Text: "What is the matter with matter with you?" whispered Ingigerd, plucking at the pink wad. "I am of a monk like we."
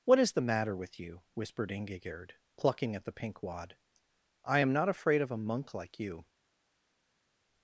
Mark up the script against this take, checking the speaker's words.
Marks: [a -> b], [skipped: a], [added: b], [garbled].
"What is the matter with [skipped: matter with] you?" whispered Ingigerd, plucking at the pink wad. "I am [added: not afraid] of a monk like [we." -> you]